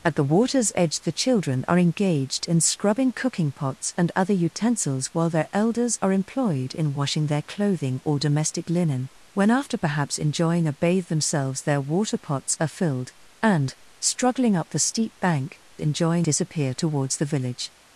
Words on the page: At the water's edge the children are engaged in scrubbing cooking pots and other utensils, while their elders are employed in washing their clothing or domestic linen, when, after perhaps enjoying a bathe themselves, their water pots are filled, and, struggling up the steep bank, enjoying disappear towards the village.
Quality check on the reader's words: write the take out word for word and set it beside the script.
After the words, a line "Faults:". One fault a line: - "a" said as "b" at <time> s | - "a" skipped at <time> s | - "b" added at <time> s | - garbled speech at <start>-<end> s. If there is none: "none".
At the water's edge the children are engaged in scrubbing cooking pots and other utensils, while their elders are employed in washing their clothing or domestic linen, when, after perhaps enjoying a bathe themselves, their water pots are filled, and, struggling up the steep bank, enjoying disappear towards the village.
Faults:
none